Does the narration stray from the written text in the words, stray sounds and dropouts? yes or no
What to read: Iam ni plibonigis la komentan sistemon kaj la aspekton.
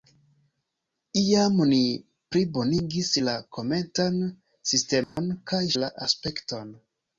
yes